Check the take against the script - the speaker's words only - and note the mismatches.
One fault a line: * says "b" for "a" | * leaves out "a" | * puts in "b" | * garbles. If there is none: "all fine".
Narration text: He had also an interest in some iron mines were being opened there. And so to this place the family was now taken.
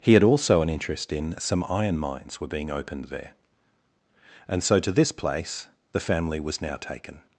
all fine